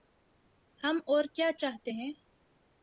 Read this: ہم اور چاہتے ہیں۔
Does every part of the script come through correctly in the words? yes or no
no